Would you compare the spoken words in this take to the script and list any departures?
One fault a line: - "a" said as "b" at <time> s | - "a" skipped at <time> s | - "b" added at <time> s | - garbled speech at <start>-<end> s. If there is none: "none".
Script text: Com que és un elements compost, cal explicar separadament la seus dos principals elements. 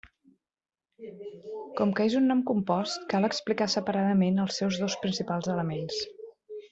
- "elements" said as "nom" at 2.3 s
- "la" said as "els" at 4.5 s